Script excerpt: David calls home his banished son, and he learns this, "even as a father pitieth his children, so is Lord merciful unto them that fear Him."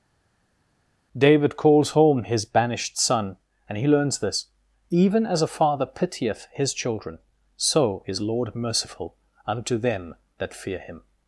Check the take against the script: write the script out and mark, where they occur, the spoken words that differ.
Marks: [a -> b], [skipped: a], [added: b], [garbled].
David calls home his banished son, and he learns this, "even as a father pitieth his children, so is Lord merciful unto them that fear Him."